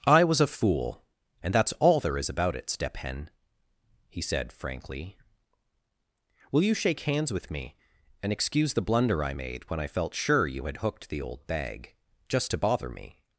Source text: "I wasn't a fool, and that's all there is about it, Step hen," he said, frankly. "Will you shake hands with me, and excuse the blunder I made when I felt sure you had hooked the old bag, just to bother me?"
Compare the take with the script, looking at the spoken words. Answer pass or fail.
fail